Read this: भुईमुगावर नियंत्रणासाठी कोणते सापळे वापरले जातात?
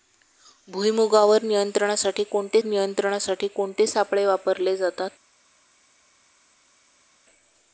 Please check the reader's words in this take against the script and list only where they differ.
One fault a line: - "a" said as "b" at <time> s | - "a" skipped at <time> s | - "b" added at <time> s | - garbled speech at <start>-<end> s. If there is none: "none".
- "नियंत्रणासाठी कोणते" added at 2.6 s